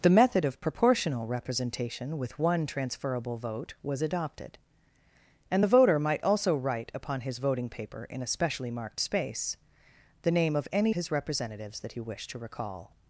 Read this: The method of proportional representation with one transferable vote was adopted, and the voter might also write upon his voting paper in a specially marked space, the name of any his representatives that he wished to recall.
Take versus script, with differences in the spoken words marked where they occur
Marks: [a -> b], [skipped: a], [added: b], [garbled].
The method of proportional representation with one transferable vote was adopted, and the voter might also write upon his voting paper in a specially marked space, the name of any his representatives that he wished to recall.